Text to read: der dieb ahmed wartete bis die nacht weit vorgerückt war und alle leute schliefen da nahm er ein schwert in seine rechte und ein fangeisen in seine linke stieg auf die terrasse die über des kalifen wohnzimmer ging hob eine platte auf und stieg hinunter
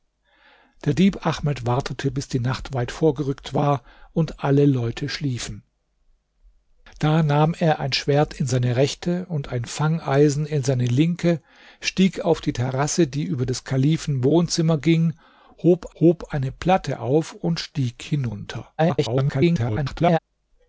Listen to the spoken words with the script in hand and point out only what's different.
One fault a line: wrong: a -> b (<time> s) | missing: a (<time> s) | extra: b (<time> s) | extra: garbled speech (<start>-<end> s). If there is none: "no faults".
extra: hob (16.0 s)
extra: garbled speech (18.8-20.2 s)